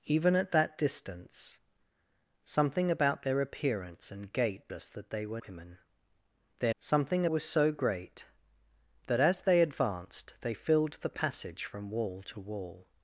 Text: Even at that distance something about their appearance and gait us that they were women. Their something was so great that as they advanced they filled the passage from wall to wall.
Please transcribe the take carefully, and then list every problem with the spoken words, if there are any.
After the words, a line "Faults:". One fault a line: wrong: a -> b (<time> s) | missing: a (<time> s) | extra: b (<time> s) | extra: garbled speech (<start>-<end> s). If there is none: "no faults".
Even at that distance something about their appearance and gait us that they were women. Their something was so great that as they advanced they filled the passage from wall to wall.
Faults:
no faults